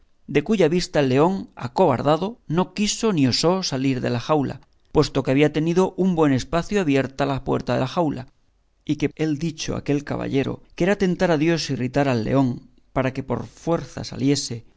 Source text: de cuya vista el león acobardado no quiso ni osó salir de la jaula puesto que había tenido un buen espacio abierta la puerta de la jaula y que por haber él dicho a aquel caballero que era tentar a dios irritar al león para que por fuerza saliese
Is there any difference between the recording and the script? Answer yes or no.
yes